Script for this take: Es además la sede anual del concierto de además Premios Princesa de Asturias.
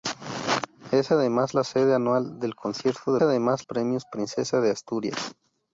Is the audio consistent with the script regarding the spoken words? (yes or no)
yes